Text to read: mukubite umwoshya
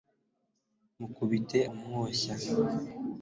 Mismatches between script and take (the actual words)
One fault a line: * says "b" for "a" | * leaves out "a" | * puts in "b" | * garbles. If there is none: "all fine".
all fine